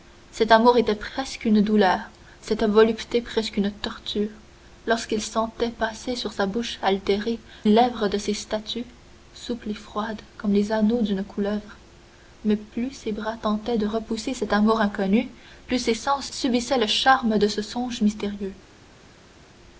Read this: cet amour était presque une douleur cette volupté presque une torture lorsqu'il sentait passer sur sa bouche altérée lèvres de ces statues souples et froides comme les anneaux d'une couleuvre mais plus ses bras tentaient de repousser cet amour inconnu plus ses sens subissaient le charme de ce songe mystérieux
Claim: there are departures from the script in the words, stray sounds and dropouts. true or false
false